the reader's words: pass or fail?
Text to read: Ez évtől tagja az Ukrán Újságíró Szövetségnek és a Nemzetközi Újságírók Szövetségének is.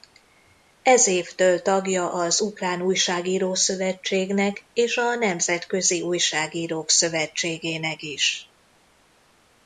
pass